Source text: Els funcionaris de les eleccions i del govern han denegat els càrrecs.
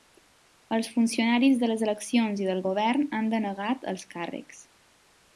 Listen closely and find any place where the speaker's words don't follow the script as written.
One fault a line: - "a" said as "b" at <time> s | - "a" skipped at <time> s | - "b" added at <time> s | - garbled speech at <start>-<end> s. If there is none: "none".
none